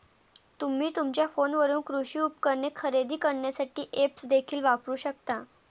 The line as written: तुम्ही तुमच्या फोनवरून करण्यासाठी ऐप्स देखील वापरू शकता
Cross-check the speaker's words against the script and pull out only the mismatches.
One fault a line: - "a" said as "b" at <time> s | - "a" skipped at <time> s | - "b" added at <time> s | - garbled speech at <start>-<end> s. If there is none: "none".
- "कृषी उपकरणे खरेदी" added at 1.8 s